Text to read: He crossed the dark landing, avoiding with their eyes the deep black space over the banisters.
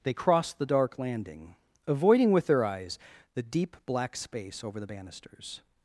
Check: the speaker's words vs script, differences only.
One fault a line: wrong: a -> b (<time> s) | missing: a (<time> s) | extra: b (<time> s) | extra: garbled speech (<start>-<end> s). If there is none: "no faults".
wrong: He -> They (0.0 s)